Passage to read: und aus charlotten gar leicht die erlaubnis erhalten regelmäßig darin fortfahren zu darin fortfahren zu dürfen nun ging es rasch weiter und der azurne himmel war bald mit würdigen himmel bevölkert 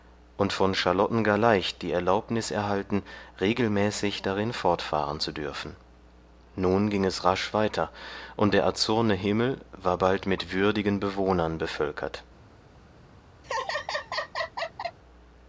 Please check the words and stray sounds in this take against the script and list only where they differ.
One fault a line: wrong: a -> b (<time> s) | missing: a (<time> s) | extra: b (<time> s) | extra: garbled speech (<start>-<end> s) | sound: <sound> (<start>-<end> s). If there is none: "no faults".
wrong: aus -> von (0.5 s)
missing: darin fortfahren zu (5.3 s)
wrong: himmel -> bewohnern (11.0 s)
sound: laugh (13.4-15.0 s)